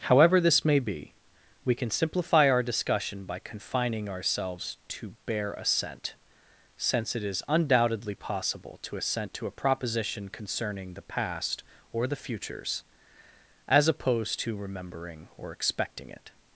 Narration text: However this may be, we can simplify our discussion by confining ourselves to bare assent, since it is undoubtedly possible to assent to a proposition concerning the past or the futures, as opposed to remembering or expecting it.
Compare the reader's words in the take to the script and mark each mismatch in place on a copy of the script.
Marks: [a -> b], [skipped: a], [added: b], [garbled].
However this may be, we can simplify our discussion by confining ourselves to bare assent, since it is undoubtedly possible to assent to a proposition concerning the past or the futures, as opposed to remembering or expecting it.